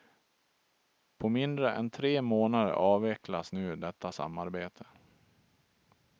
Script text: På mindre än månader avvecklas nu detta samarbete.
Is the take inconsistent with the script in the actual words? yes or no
yes